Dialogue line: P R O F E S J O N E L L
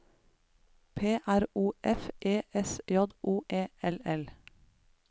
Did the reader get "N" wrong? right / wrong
wrong